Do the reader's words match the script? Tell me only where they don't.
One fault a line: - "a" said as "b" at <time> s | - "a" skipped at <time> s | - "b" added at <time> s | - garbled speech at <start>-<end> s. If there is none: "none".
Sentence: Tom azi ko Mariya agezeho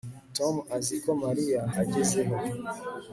none